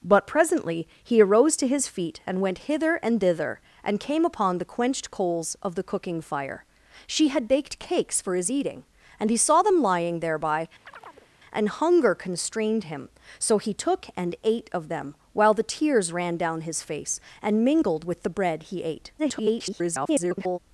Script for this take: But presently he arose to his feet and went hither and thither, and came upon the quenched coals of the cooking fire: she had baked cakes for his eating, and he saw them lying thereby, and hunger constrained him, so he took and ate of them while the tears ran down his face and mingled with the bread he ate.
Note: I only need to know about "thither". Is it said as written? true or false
true